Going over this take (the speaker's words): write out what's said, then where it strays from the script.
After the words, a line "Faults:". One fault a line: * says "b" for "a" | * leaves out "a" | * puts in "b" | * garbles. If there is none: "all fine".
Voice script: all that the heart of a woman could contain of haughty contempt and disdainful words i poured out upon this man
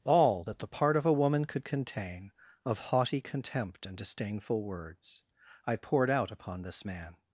all that the part of a woman could contain of haughty contempt and disdainful words i poured out upon this man
Faults:
* says "part" for "heart"